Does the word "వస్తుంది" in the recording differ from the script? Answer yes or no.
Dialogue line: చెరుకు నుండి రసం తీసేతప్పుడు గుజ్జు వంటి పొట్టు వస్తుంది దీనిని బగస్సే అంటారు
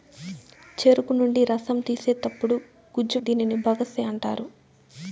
yes